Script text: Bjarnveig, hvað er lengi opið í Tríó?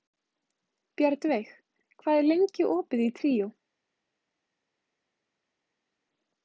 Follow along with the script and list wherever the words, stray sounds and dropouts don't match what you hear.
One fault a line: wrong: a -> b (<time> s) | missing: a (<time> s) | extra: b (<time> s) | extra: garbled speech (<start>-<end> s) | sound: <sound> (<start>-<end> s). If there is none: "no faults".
no faults